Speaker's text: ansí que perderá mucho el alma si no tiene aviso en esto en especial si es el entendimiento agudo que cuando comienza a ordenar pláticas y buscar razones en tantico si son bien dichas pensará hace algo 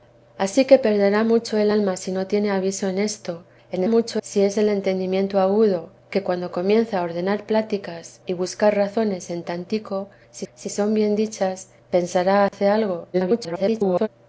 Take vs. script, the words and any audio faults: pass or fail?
fail